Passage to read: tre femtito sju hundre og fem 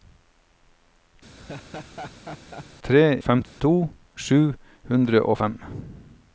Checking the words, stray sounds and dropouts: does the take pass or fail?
fail